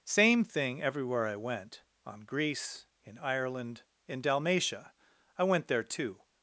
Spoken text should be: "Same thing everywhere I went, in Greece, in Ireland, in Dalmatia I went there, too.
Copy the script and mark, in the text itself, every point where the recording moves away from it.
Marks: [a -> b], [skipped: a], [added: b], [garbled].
"Same thing everywhere I went, [in -> on] Greece, in Ireland, in Dalmatia I went there, too.